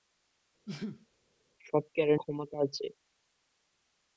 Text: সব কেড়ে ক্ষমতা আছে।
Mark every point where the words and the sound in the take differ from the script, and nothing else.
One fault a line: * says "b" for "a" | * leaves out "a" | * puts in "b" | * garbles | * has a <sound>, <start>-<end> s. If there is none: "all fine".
* has a sneeze, 0.7-1.1 s